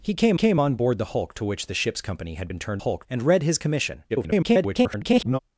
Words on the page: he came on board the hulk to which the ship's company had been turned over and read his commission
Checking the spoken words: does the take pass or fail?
fail